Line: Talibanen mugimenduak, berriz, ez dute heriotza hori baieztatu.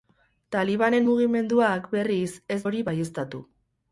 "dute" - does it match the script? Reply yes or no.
no